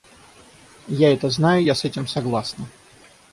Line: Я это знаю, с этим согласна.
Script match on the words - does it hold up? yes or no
no